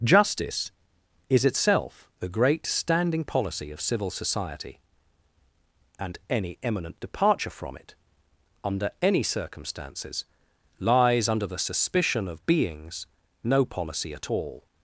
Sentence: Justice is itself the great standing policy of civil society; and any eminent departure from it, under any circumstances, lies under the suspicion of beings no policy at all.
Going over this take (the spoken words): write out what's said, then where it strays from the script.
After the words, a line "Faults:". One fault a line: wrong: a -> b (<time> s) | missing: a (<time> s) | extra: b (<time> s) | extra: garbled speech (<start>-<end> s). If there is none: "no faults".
Justice is itself the great standing policy of civil society; and any eminent departure from it, under any circumstances, lies under the suspicion of beings no policy at all.
Faults:
no faults